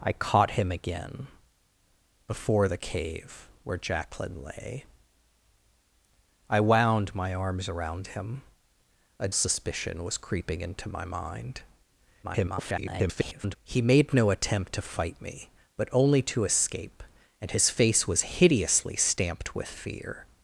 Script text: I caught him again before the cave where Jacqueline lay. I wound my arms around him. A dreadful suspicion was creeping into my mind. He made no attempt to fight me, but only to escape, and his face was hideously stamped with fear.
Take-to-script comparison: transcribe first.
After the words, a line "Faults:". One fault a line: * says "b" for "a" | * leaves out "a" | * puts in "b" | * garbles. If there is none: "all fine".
I caught him again before the cave where Jacqueline lay. I wound my arms around him. A suspicion was creeping into my mind. [garbled] He made no attempt to fight me, but only to escape, and his face was hideously stamped with fear.
Faults:
* leaves out "dreadful"
* garbles